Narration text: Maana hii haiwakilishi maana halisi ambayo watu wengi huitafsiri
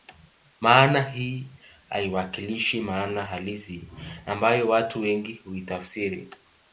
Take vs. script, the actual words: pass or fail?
pass